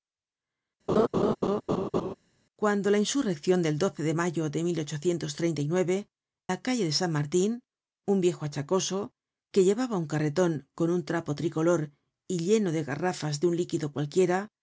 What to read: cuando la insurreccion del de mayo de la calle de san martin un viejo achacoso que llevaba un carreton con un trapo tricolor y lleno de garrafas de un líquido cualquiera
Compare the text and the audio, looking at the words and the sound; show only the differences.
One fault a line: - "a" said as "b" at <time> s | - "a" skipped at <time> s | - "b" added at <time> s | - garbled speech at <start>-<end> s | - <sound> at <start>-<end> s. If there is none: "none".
- laugh at 0.9-2.1 s